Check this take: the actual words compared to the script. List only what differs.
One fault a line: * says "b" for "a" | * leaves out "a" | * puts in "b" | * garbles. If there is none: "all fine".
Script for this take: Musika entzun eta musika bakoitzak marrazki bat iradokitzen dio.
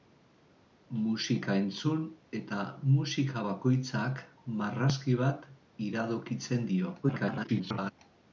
* garbles